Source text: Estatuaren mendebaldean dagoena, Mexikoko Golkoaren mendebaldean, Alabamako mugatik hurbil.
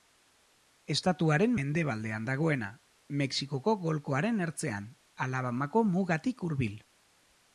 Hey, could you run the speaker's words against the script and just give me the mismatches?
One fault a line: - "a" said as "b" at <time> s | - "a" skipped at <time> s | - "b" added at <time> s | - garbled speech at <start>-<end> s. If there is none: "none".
- "mendebaldean" said as "ertzean" at 4.5 s